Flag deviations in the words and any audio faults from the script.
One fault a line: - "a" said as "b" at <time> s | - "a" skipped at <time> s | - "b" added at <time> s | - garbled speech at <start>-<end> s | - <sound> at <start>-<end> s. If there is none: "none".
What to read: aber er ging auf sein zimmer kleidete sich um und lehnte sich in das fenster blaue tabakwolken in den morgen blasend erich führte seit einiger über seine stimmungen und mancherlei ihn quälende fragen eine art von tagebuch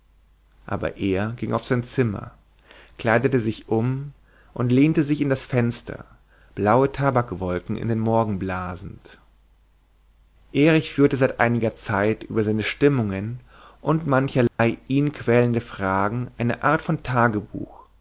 - "zeit" added at 11.8 s
- dropout at 14.5-14.6 s